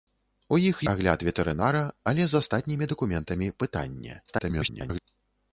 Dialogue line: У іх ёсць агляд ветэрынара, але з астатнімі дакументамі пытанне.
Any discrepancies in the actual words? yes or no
yes